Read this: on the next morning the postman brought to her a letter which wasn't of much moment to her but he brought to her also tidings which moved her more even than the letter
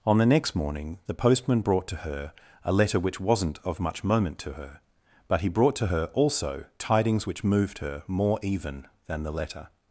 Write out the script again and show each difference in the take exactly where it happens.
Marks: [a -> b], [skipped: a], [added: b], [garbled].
on the next morning the postman brought to her a letter which wasn't of much moment to her but he brought to her also tidings which moved her more even than the letter